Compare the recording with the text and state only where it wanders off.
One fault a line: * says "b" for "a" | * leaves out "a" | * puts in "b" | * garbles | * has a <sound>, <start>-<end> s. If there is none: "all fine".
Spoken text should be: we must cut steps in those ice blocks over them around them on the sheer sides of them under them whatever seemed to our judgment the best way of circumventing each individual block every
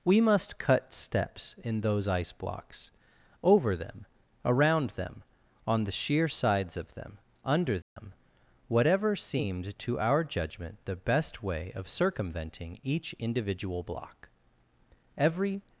* has a dropout, 7.8-8.0 s